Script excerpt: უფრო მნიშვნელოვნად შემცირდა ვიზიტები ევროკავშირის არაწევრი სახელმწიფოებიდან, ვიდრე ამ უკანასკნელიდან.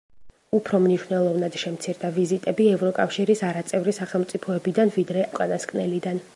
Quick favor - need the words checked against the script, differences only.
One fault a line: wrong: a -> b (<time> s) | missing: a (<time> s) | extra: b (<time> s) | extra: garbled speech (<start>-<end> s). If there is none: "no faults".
missing: ამ (5.3 s)